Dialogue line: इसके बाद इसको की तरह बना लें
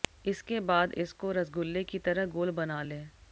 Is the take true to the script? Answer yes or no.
no